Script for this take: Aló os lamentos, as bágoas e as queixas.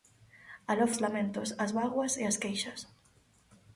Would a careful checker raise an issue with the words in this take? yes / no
no